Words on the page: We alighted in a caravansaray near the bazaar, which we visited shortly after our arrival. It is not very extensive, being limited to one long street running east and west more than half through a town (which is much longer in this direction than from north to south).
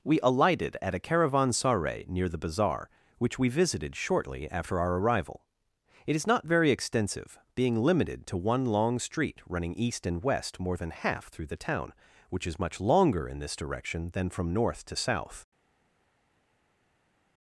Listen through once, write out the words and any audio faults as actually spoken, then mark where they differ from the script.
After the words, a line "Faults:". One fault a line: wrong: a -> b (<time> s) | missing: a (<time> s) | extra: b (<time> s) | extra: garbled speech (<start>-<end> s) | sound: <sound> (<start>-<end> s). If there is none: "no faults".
We alighted at a caravansaray near the bazaar, which we visited shortly after our arrival. It is not very extensive, being limited to one long street running east and west more than half through the town (which is much longer in this direction than from north to south).
Faults:
wrong: in -> at (0.8 s)
wrong: a -> the (11.4 s)